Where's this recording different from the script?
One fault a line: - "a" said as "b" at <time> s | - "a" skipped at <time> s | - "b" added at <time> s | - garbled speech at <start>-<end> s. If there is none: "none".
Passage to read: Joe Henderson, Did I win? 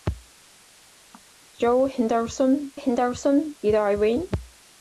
- "Henderson" added at 2.7 s